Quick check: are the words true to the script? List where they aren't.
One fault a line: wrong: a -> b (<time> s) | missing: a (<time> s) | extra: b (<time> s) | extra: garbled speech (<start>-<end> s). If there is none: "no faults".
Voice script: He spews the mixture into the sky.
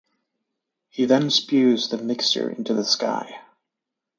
extra: then (1.0 s)